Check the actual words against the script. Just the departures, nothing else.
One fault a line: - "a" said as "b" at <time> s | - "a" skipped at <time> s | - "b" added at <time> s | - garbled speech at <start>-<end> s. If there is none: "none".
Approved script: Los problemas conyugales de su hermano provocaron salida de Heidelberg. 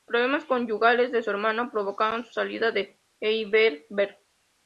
- "su" added at 2.2 s